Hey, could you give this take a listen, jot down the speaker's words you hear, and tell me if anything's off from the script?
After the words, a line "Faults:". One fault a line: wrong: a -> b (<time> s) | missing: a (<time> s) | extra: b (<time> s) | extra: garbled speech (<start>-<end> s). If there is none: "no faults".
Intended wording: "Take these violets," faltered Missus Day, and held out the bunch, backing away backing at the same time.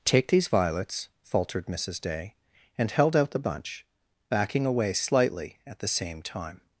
"Take these violets," faltered Missus Day, and held out the bunch, backing away slightly at the same time.
Faults:
wrong: backing -> slightly (4.9 s)